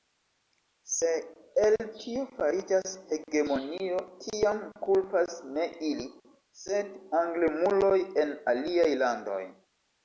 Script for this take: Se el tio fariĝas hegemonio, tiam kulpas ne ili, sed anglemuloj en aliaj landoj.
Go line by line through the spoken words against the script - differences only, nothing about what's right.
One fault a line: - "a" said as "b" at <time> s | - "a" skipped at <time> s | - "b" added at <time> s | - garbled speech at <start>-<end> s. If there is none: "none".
none